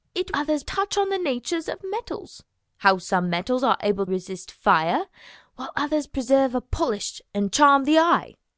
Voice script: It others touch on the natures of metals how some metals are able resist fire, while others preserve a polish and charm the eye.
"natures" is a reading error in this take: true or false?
false